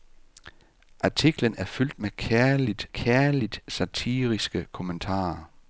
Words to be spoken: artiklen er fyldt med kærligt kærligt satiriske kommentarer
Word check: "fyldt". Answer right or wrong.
right